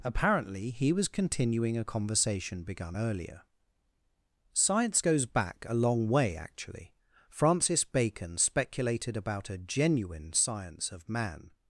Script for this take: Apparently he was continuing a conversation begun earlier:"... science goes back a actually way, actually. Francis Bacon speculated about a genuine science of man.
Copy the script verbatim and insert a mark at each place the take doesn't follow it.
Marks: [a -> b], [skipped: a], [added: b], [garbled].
Apparently he was continuing a conversation begun earlier:"... science goes back a [actually -> long] way, actually. Francis Bacon speculated about a genuine science of man.